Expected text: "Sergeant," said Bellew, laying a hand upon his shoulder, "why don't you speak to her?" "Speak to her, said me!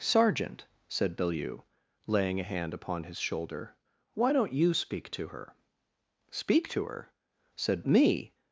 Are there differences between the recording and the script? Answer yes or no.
no